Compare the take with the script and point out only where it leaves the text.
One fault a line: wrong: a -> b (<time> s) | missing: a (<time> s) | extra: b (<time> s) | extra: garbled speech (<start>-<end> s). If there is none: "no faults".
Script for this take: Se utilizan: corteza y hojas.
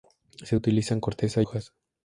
missing: y (1.4 s)